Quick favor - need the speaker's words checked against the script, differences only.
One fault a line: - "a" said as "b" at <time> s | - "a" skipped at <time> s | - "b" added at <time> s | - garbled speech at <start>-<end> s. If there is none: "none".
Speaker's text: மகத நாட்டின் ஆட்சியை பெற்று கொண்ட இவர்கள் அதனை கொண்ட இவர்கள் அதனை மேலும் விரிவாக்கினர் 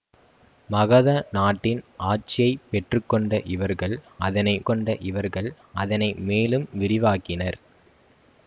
none